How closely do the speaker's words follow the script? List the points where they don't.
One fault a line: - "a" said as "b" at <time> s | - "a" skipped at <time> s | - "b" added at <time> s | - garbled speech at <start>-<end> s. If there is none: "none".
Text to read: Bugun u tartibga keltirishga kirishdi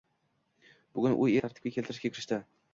none